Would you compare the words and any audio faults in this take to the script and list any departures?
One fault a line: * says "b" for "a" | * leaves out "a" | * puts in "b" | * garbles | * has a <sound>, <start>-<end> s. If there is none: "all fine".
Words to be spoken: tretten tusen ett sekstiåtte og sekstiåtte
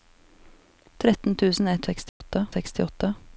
* has a dropout, 2.1-2.2 s